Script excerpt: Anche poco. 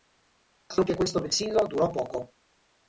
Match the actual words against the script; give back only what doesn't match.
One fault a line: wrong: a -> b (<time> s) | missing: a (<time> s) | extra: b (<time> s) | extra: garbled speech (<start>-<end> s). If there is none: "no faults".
extra: questo vessillo durò (0.9 s)